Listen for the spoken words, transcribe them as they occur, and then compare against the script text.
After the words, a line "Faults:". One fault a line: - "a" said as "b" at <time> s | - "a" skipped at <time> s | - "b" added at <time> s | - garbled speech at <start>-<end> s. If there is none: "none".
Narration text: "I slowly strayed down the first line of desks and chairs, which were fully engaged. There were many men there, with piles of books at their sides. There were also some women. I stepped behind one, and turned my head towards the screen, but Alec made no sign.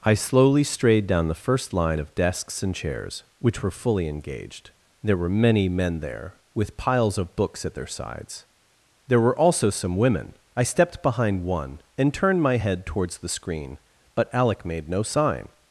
"I slowly strayed down the first line of desks and chairs, which were fully engaged. There were many men there, with piles of books at their sides. There were also some women. I stepped behind one, and turned my head towards the screen, but Alec made no sign.
Faults:
none